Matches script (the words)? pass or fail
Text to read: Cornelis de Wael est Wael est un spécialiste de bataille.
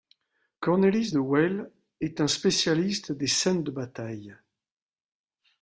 fail